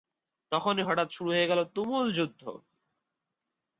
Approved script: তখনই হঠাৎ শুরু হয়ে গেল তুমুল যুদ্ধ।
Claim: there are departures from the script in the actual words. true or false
false